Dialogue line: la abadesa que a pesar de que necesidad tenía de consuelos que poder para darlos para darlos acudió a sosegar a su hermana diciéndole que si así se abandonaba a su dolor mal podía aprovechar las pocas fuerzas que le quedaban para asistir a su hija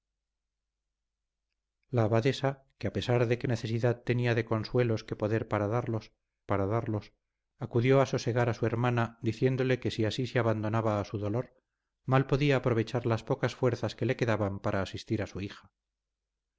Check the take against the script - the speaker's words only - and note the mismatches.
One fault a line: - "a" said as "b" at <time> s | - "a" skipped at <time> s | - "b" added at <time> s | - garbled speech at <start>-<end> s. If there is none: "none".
none